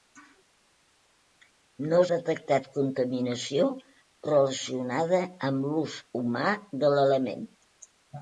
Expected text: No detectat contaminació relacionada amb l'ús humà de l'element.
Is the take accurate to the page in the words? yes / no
yes